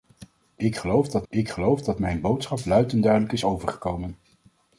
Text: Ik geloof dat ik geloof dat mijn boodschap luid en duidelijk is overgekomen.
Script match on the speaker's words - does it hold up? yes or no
yes